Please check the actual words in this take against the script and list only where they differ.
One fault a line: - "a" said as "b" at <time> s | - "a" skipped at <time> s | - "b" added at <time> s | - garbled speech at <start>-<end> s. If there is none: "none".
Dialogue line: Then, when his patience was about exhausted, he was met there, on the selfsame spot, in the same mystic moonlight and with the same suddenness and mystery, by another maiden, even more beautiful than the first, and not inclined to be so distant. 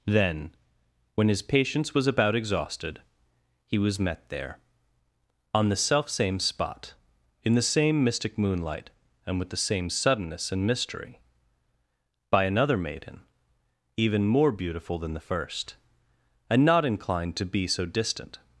none